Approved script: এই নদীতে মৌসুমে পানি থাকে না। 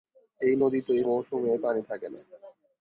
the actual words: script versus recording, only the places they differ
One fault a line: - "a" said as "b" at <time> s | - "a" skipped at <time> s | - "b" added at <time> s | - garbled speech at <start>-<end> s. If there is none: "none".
none